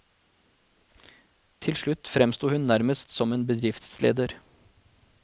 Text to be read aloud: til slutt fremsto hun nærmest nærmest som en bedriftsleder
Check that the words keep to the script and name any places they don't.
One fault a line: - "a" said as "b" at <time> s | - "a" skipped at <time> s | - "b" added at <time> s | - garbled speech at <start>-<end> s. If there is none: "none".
- "nærmest" skipped at 3.1 s